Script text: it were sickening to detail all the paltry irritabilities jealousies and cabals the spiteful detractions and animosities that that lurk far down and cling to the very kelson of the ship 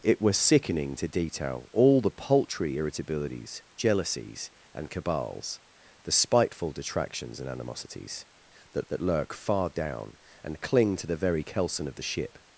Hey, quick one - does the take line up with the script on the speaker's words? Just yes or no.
yes